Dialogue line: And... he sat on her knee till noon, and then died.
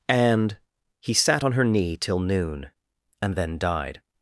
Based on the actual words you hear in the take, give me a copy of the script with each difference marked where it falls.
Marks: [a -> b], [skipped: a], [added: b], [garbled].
And... he sat on her knee till noon, and then died.